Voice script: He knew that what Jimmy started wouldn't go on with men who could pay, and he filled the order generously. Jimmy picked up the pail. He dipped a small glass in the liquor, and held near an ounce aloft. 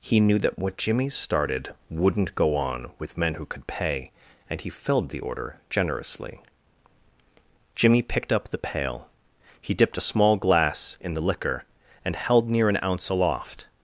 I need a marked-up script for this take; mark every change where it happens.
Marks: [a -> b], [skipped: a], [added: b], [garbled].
He knew that what Jimmy started wouldn't go on with men who could pay, and he filled the order generously. Jimmy picked up the pail. He dipped a small glass in the liquor, and held near an ounce aloft.